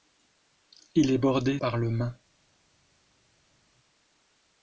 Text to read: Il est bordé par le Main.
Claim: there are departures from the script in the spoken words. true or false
false